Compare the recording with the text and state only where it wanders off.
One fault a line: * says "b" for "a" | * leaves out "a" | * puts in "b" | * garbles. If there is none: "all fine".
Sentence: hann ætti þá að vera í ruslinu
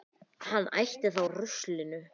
* leaves out "að vera"